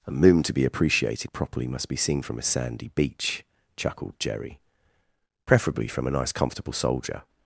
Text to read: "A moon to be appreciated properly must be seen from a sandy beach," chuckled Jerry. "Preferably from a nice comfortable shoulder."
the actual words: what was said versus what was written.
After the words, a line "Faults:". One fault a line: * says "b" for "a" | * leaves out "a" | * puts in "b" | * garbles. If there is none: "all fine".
"A moon to be appreciated properly must be seen from a sandy beach," chuckled Jerry. "Preferably from a nice comfortable soldier."
Faults:
* says "soldier" for "shoulder"